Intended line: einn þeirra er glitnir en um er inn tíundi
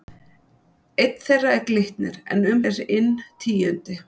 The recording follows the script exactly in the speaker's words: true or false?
true